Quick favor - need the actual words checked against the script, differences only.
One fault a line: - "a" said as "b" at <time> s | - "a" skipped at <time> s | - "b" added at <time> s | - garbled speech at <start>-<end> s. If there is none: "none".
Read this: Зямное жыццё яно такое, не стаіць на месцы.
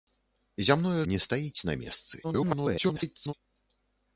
- "жыццё яно такое" skipped at 1.0 s
- garbled speech at 2.2-3.3 s